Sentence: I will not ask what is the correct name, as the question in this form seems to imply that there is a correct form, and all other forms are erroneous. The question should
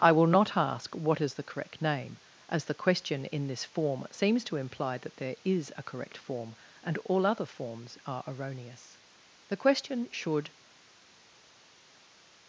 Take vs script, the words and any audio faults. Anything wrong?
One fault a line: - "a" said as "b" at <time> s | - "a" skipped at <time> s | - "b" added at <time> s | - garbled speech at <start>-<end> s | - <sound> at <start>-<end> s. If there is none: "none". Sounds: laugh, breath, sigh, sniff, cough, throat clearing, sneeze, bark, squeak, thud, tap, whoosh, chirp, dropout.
none